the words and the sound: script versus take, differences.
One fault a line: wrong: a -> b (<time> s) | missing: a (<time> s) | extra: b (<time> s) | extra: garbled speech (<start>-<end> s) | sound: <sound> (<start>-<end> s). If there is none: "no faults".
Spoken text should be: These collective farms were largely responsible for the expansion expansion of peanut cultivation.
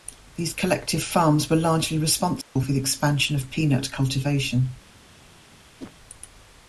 sound: dropout (2.4-2.6 s)
missing: expansion (3.3 s)
sound: whoosh (5.8-5.9 s)